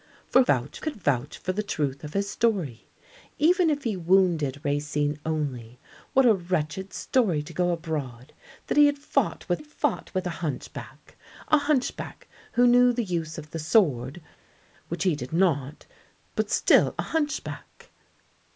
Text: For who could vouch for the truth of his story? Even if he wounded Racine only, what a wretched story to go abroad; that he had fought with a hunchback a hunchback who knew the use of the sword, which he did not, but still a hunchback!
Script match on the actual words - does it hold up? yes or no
no